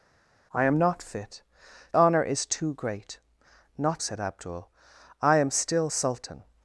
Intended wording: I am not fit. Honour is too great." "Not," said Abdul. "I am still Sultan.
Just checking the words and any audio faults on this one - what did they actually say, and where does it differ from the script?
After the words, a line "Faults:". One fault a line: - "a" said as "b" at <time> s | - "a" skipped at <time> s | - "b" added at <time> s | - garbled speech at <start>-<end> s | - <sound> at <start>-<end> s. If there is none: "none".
I am not fit. Honour is too great." "Not," said Abdul. "I am still Sultan.
Faults:
none